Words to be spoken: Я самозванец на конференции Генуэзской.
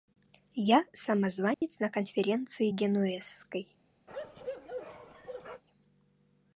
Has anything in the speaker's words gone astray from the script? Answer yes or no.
no